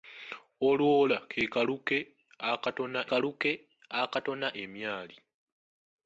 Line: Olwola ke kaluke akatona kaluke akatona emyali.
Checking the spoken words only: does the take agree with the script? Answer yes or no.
yes